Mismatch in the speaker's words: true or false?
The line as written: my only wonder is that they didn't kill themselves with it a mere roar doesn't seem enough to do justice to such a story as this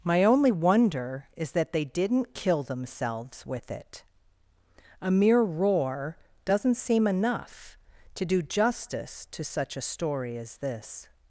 false